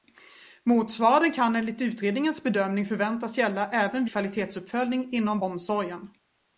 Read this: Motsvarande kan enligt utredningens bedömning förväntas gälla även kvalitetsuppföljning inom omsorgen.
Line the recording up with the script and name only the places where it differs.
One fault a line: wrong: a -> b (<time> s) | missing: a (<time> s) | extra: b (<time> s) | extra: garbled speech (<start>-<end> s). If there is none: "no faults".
no faults